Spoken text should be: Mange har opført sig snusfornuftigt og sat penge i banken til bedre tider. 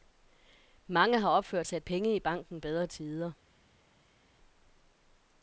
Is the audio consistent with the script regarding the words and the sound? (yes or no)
no